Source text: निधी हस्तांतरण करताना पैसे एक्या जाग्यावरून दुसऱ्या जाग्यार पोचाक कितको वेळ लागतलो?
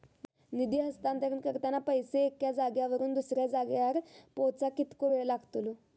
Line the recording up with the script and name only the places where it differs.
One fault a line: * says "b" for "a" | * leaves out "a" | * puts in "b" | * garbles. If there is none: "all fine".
all fine